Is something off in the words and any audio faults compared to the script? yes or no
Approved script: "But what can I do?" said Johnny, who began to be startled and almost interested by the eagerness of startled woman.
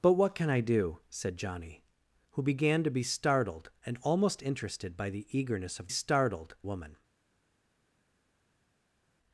no